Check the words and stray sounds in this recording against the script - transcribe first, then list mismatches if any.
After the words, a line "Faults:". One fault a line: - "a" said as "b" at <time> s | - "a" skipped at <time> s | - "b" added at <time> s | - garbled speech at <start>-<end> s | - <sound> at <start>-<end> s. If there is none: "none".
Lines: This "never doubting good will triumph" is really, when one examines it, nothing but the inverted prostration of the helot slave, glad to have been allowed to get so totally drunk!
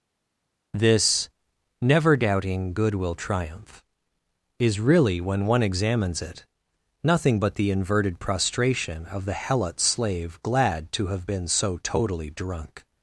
This "never doubting good will triumph" is really, when one examines it, nothing but the inverted prostration of the helot slave, glad to have been so totally drunk!
Faults:
- "allowed to get" skipped at 11.5 s